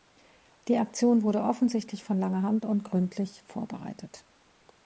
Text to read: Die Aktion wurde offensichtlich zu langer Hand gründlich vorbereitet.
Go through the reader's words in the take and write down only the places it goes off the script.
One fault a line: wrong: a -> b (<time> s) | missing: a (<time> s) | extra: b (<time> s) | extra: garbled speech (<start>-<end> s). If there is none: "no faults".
wrong: zu -> von (2.0 s)
extra: und (2.6 s)